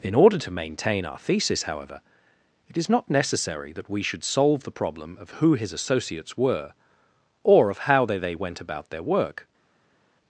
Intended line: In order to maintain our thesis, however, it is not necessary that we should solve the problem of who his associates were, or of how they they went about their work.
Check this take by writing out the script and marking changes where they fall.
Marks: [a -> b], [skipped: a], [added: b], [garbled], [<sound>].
In order to maintain our thesis, however, it is not necessary that we should solve the problem of who his associates were, or of how they they went about their work.